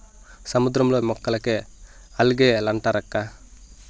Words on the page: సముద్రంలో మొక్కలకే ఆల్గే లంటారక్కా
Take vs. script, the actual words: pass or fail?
pass